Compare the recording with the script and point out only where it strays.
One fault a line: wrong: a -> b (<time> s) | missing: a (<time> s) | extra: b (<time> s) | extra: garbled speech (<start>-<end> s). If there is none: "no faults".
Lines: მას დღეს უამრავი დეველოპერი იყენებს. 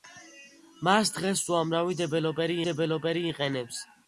extra: დეველოპერი (2.7 s)